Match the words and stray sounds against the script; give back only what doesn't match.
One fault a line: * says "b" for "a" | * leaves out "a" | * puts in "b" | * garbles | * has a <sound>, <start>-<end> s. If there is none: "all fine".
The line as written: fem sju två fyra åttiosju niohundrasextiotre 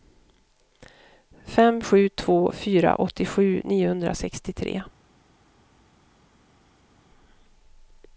all fine